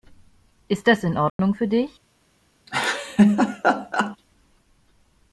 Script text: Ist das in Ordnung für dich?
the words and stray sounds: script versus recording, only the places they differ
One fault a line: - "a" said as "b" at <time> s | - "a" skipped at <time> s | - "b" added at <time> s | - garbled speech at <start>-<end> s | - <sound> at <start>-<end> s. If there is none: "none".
- dropout at 1.3-1.4 s
- laugh at 2.7-4.2 s